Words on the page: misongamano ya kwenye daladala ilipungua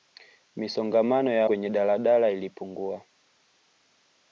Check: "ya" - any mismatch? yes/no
no